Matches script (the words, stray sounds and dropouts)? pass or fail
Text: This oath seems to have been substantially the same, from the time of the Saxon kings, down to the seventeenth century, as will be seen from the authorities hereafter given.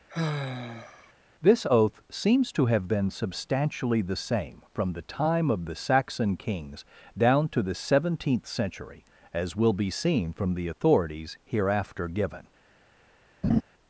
fail